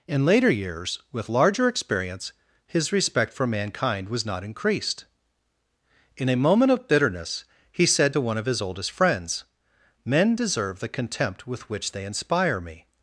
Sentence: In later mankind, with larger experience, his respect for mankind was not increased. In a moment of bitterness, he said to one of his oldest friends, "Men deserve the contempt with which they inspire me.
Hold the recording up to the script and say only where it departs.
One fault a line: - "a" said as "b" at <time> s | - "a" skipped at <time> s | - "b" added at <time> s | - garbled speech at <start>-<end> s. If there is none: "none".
- "mankind" said as "years" at 0.5 s